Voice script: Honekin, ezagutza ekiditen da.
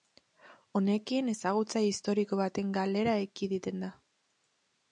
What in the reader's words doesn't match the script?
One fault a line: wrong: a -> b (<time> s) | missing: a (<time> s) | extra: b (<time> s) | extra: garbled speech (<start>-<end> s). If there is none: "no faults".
extra: historiko baten galera (1.9 s)